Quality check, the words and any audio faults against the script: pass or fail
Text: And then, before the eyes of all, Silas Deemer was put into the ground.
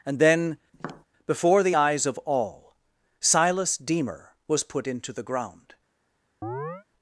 fail